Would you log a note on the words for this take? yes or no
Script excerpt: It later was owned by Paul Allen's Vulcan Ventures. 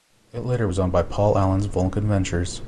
no